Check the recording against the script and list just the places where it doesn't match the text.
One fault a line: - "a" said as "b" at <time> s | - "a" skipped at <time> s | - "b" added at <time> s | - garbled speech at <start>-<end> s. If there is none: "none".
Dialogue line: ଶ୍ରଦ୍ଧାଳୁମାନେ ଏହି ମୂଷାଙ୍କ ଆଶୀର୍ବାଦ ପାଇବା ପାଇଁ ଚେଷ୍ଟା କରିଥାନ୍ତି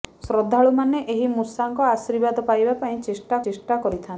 - "ଚେଷ୍ଟା" added at 3.4 s